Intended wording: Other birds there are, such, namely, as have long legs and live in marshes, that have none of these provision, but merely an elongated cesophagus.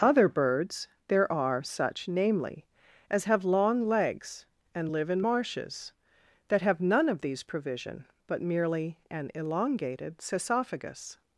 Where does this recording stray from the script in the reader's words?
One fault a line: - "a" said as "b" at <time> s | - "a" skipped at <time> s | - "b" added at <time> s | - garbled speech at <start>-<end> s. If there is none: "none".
none